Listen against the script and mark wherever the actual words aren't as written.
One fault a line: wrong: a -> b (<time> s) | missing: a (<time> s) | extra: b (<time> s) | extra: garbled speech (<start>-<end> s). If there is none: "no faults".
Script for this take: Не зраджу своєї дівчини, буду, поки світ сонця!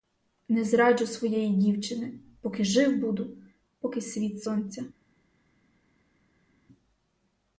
extra: поки жив (2.4 s)